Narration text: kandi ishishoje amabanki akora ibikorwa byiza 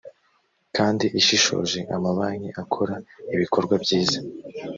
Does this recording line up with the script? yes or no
yes